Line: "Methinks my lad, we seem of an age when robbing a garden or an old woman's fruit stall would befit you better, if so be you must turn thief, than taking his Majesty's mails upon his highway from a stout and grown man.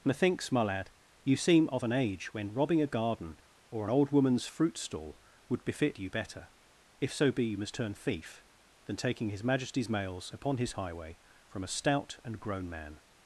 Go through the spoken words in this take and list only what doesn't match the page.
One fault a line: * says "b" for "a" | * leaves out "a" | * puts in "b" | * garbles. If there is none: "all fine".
* says "you" for "we"